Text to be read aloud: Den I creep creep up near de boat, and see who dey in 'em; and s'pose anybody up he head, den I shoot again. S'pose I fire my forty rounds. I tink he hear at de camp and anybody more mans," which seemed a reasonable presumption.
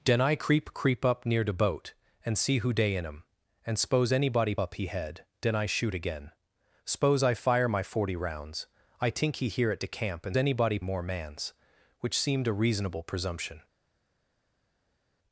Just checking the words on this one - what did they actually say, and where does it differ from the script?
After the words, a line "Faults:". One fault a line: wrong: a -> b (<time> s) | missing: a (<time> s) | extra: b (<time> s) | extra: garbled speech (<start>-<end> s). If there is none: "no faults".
Den I creep creep up near de boat, and see who dey in 'em; and s'pose anybody up he head, den I shoot again. S'pose I fire my forty rounds. I tink he hear at de camp and anybody more mans," which seemed a reasonable presumption.
Faults:
no faults